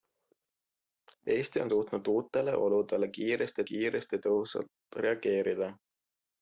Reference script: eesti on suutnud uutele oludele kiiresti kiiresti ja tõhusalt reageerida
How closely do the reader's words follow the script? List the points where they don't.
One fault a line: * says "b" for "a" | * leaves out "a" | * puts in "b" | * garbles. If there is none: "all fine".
all fine